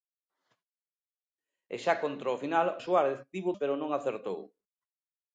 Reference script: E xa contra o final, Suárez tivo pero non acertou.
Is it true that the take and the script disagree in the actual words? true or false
false